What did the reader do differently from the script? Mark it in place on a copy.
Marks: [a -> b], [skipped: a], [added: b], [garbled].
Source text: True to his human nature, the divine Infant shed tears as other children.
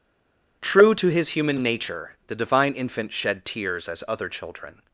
True to his human nature, the divine Infant shed tears as other children.